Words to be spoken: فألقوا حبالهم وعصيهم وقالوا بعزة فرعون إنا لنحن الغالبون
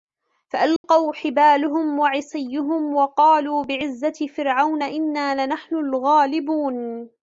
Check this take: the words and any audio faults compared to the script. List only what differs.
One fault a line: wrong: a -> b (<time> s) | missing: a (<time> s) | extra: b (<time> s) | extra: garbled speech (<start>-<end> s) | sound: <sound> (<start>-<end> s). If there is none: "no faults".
sound: dropout (0.8-0.8 s)